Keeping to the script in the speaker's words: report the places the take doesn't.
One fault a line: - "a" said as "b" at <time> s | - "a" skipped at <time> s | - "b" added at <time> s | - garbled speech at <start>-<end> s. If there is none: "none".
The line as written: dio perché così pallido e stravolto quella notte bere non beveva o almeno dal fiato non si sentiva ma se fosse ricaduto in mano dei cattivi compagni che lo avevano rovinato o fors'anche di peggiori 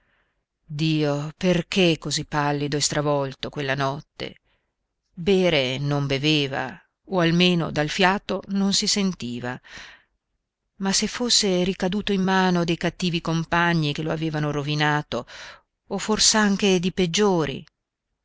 none